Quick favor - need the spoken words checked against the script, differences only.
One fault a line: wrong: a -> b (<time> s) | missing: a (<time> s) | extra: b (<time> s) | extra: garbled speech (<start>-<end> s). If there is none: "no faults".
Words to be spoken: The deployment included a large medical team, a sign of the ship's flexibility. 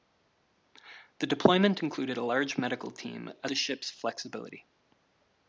missing: sign of (3.5 s)